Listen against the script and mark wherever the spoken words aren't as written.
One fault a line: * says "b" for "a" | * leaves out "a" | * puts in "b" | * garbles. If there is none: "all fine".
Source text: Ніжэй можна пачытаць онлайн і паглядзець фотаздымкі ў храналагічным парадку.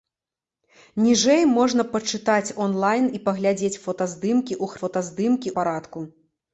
* says "фотаздымкі" for "храналагічным"